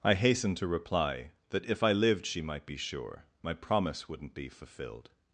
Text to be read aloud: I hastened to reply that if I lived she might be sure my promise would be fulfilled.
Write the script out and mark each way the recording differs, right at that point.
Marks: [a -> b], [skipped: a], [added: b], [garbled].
I hastened to reply that if I lived she might be sure my promise [would -> wouldn't] be fulfilled.